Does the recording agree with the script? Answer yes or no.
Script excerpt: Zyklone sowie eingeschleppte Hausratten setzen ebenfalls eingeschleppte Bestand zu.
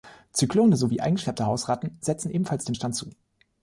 no